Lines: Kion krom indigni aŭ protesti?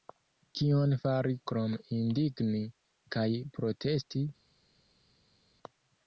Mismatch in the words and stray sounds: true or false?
true